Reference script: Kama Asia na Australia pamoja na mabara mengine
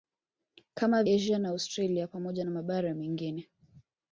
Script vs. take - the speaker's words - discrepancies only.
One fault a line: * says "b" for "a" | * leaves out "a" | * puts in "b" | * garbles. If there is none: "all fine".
all fine